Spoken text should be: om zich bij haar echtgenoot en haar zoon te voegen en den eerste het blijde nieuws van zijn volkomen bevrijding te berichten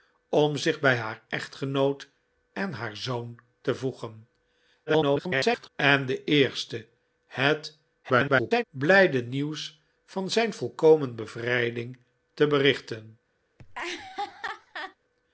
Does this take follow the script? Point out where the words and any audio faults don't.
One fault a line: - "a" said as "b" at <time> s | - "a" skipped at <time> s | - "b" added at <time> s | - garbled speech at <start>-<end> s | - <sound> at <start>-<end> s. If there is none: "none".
- garbled speech at 4.9-5.7 s
- garbled speech at 8.0-8.6 s
- laugh at 13.6-15.0 s